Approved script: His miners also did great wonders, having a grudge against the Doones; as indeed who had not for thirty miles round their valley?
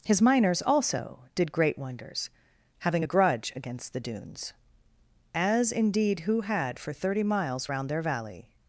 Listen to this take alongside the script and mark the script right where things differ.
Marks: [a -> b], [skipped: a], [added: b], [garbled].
His miners also did great wonders, having a grudge against the Doones; as indeed who had [skipped: not] for thirty miles round their valley?